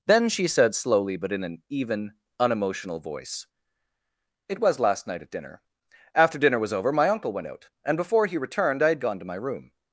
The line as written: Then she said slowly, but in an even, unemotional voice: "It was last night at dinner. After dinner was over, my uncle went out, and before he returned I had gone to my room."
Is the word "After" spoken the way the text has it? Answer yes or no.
yes